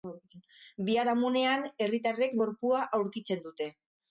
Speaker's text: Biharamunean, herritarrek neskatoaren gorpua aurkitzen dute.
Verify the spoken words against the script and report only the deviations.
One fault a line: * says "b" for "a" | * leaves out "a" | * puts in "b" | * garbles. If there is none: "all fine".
* leaves out "neskatoaren"